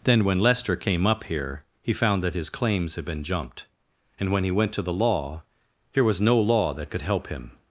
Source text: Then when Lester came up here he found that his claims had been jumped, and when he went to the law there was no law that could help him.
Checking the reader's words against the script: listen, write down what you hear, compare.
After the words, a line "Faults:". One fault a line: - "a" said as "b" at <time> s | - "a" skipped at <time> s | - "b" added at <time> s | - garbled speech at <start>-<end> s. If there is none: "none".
Then when Lester came up here he found that his claims had been jumped, and when he went to the law here was no law that could help him.
Faults:
- "there" said as "here" at 5.9 s